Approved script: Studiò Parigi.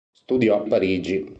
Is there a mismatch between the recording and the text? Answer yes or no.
no